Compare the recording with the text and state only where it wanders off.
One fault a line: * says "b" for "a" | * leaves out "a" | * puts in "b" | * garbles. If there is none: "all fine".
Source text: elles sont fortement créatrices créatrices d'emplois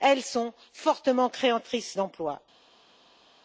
* leaves out "créatrices"